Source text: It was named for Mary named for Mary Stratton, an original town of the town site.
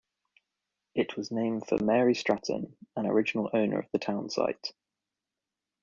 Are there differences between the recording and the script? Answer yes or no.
yes